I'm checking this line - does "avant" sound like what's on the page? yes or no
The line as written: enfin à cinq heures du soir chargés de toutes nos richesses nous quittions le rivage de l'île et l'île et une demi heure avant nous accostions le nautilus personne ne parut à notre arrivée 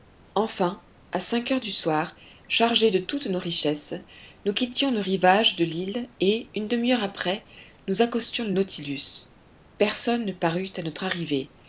no